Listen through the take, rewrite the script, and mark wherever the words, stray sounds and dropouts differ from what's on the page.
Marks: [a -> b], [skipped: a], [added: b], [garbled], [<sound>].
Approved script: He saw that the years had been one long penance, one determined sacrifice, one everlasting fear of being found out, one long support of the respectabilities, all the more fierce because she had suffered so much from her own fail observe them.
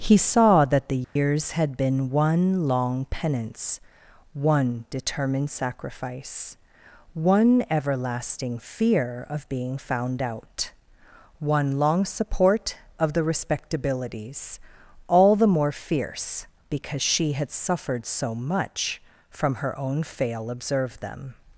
He saw that the years [dropout] had been one long penance, one determined sacrifice, one everlasting fear of being found out, one long support of the respectabilities, all the more fierce because she had suffered so much from her own fail observe them.